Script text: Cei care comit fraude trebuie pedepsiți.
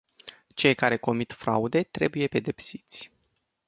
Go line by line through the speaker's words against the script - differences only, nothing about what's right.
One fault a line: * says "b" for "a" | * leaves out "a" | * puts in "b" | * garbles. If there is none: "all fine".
all fine